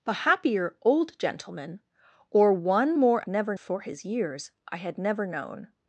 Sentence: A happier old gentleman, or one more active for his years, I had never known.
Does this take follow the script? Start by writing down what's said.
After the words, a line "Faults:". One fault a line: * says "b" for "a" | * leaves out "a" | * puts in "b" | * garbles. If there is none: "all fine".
A happier old gentleman, or one more never for his years, I had never known.
Faults:
* says "never" for "active"